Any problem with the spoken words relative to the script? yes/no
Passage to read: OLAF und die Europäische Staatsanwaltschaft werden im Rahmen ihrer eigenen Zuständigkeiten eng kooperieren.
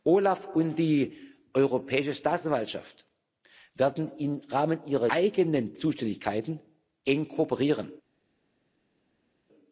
no